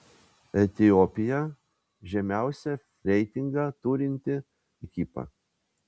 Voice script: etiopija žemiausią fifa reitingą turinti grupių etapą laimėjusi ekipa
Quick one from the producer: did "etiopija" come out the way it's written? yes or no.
yes